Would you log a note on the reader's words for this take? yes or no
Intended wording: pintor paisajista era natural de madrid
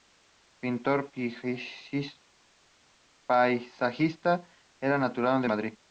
no